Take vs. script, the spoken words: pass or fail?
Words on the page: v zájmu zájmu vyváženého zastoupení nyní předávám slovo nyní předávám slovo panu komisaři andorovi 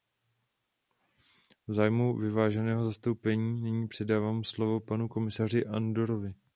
fail